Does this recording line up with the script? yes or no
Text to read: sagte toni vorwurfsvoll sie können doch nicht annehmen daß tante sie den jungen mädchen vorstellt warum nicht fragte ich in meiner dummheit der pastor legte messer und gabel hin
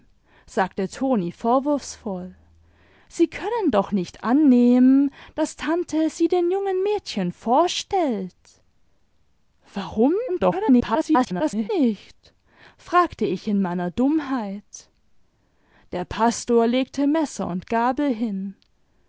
no